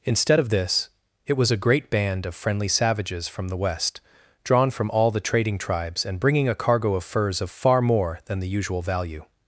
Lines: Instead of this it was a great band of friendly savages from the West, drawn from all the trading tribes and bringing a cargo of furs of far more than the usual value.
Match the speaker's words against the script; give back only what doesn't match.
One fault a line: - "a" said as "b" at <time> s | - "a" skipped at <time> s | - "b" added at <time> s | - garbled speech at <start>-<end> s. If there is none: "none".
none